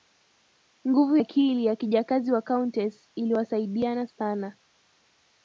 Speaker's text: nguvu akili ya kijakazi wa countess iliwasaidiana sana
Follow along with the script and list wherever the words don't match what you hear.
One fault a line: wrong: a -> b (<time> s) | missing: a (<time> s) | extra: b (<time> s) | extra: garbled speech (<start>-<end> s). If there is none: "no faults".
no faults